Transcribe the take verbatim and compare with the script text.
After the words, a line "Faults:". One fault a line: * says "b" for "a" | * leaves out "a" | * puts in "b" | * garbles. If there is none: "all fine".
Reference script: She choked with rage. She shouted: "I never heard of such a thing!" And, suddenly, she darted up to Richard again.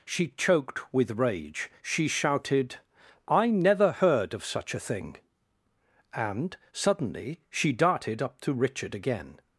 She choked with rage. She shouted: "I never heard of such a thing!" And, suddenly, she darted up to Richard again.
Faults:
all fine